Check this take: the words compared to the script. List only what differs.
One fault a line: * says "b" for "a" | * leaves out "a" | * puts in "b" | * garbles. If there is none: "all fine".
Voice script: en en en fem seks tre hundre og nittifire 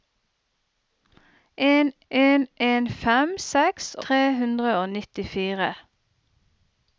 all fine